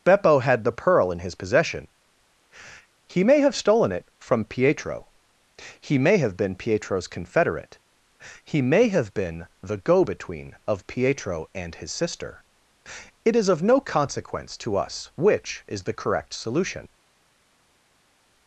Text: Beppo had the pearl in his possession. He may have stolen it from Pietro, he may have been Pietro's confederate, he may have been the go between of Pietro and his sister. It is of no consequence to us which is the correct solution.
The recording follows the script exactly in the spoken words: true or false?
true